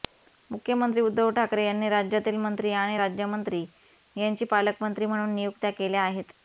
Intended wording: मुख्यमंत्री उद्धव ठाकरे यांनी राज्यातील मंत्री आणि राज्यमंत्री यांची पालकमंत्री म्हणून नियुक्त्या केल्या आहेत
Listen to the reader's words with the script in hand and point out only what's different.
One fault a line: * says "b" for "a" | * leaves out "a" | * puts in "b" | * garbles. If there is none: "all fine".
all fine